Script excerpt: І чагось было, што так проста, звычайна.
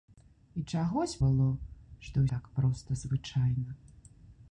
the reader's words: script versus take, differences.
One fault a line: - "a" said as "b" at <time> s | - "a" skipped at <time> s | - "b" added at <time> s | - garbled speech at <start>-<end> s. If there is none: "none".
none